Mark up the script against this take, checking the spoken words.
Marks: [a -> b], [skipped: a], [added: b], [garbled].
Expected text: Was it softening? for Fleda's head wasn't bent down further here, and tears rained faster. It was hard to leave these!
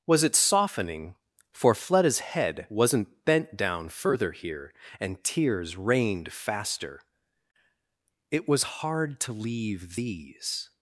Was it softening? for Fleda's head wasn't bent down further here, and tears rained faster. It was hard to leave these!